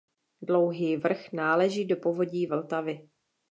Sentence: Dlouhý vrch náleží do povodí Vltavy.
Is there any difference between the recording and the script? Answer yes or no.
no